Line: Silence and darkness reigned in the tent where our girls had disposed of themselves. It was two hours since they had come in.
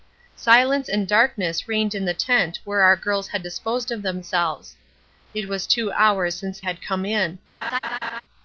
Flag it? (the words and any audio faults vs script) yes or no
yes